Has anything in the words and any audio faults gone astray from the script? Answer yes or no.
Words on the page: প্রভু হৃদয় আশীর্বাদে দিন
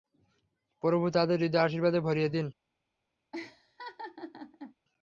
yes